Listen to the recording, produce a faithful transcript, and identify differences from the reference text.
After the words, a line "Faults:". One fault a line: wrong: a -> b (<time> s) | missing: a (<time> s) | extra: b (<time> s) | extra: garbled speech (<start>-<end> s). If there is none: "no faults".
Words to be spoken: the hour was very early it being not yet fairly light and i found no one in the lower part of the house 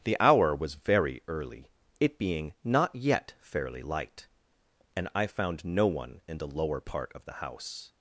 the hour was very early it being not yet fairly light and i found no one in the lower part of the house
Faults:
no faults